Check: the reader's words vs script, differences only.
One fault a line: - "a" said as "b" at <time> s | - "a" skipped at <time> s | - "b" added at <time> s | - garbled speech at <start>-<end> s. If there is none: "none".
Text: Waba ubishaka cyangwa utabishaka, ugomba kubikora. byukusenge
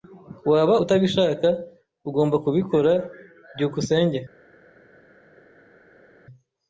- "ubishaka cyangwa" skipped at 0.8 s